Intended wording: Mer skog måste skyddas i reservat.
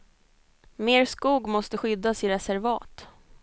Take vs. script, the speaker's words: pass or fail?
pass